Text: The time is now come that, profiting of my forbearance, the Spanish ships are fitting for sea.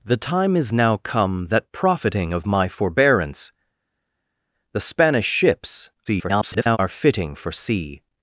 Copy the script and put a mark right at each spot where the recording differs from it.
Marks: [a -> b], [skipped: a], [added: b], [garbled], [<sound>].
The time is now come that, profiting of my forbearance, the Spanish ships [garbled] are fitting for sea.